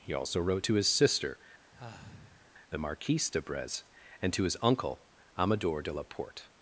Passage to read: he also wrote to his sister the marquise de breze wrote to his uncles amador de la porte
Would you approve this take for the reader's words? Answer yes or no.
no